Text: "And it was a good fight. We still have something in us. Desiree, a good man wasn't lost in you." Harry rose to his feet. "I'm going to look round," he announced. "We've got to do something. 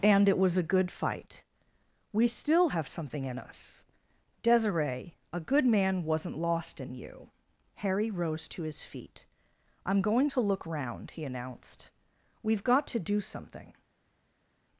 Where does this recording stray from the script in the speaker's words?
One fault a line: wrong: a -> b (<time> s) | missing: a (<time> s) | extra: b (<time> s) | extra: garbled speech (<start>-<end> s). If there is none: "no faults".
no faults